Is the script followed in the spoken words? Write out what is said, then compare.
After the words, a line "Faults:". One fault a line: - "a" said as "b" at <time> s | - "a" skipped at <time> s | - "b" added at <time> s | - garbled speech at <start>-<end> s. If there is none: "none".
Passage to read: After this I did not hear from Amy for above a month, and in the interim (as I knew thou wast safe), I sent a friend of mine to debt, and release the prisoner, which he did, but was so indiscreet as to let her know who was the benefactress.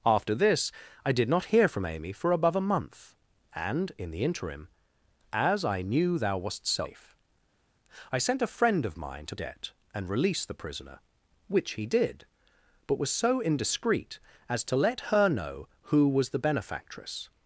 After this I did not hear from Amy for above a month, and in the interim (as I knew thou wast safe), I sent a friend of mine to debt, and release the prisoner, which he did, but was so indiscreet as to let her know who was the benefactress.
Faults:
none